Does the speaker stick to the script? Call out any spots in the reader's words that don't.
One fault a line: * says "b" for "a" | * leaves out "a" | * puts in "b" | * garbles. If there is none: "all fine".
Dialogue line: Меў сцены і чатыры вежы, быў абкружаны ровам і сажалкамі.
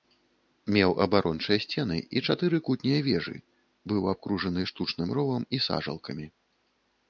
* puts in "абарончыя"
* puts in "кутнія"
* puts in "штучным"